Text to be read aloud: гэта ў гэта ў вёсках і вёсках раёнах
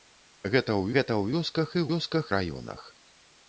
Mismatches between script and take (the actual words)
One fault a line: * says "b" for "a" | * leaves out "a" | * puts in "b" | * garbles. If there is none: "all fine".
all fine